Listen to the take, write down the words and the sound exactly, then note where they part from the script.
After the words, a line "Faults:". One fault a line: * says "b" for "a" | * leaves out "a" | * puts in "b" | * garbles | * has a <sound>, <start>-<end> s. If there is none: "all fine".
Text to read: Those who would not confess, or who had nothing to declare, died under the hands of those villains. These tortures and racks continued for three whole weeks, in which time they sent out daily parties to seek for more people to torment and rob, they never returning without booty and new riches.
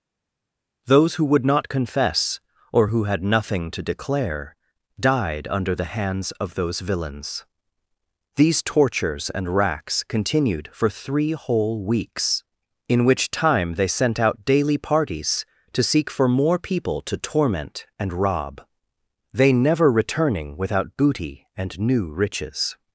Those who would not confess, or who had nothing to declare, died under the hands of those villains. These tortures and racks continued for three whole weeks, in which time they sent out daily parties to seek for more people to torment and rob, they never returning without booty and new riches.
Faults:
all fine